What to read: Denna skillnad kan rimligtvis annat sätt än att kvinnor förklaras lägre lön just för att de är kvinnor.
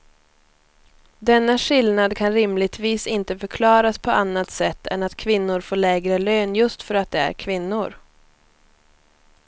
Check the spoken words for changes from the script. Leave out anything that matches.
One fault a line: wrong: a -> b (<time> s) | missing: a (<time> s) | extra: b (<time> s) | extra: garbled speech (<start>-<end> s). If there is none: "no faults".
extra: inte förklaras på (3.1 s)
wrong: förklaras -> får (5.6 s)